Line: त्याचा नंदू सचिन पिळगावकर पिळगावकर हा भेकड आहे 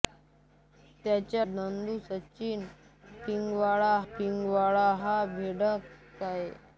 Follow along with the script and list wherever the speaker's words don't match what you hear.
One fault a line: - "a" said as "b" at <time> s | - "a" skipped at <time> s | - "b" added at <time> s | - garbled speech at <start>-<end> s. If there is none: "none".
none